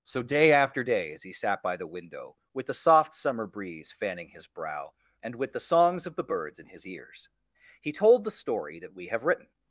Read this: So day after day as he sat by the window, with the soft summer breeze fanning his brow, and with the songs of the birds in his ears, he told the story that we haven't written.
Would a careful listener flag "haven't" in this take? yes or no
yes